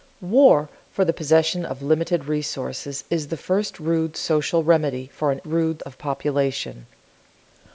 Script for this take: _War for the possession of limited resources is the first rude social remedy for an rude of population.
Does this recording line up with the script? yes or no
yes